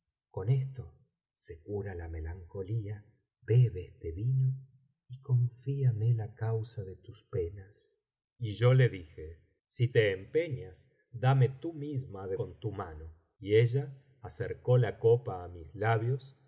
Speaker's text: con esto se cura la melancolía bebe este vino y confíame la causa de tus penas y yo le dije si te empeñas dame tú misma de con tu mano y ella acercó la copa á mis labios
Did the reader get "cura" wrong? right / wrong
right